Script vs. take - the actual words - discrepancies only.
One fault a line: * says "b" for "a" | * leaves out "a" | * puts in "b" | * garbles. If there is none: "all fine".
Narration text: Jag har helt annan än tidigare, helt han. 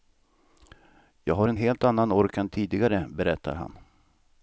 * puts in "en"
* puts in "ork"
* says "berättar" for "helt"